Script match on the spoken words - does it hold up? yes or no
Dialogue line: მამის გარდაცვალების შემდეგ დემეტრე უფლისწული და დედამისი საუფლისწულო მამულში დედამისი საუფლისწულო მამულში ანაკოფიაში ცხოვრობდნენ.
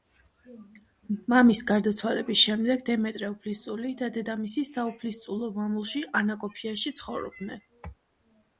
no